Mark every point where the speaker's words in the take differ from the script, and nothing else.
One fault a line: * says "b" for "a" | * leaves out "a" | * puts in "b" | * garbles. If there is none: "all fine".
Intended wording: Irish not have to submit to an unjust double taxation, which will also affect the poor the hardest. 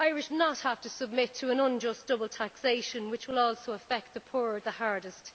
all fine